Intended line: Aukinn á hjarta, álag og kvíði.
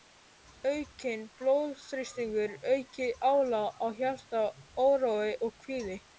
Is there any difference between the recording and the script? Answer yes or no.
yes